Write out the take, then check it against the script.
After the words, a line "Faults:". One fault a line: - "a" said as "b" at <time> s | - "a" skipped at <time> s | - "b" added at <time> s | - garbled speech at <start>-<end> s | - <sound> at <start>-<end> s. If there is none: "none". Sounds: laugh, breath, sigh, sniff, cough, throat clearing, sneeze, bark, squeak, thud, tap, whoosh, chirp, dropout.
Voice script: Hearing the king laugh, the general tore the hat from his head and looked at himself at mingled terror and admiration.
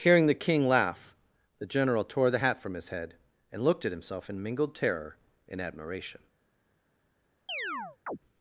Hearing the king laugh, the general tore the hat from his head and looked at himself in mingled terror and admiration.
Faults:
- "at" said as "in" at 4.3 s
- chirp at 7.5-8.2 s